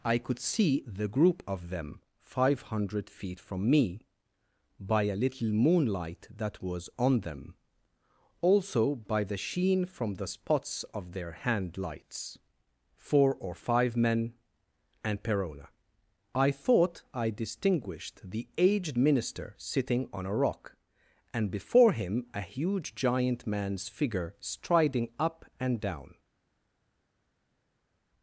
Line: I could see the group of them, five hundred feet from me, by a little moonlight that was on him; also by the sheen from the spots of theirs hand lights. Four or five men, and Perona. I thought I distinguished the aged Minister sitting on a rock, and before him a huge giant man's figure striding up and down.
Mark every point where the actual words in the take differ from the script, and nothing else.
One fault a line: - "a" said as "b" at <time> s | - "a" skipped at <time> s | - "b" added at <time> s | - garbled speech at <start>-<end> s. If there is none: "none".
- "him" said as "them" at 7.2 s
- "theirs" said as "their" at 11.1 s